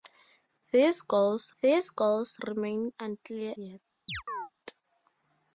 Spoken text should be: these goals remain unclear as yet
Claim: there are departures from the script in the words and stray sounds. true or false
true